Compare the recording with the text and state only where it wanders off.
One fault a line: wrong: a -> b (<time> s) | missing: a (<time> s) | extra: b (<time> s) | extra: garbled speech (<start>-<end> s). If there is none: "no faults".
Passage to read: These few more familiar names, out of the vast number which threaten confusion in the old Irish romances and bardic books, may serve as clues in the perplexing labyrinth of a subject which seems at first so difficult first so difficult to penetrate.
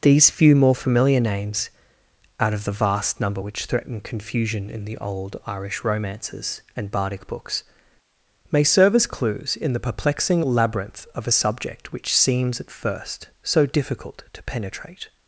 missing: first so difficult (14.2 s)